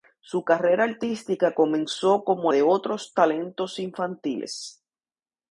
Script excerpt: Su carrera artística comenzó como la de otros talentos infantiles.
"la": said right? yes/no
no